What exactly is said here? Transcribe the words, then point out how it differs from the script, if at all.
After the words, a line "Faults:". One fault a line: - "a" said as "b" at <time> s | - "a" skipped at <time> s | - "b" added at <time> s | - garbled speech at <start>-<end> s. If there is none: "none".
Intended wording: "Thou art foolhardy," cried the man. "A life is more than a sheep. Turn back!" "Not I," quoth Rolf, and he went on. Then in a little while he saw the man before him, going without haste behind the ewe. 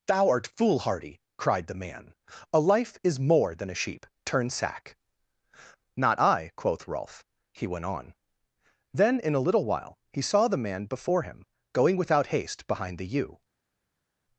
"Thou art foolhardy," cried the man. "A life is more than a sheep. Turn sack!" "Not I," quoth Rolf, he went on. Then in a little while he saw the man before him, going without haste behind the ewe.
Faults:
- "back" said as "sack" at 4.5 s
- "and" skipped at 7.2 s